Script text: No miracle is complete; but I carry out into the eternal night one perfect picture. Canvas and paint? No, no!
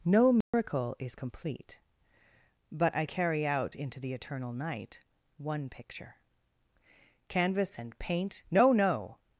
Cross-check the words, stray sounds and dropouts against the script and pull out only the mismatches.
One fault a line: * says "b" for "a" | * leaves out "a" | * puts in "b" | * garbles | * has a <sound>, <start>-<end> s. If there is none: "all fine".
* has a dropout, 0.4-0.5 s
* leaves out "perfect"